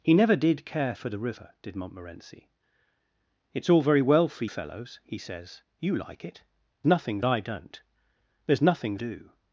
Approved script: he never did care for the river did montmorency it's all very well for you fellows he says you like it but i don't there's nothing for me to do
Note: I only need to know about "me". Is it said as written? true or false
false